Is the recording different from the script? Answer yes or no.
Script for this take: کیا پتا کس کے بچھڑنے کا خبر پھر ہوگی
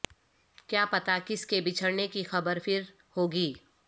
yes